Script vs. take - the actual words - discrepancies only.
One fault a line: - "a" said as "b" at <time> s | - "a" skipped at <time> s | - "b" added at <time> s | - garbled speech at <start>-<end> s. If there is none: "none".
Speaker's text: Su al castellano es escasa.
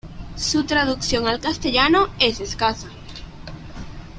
- "traducción" added at 0.6 s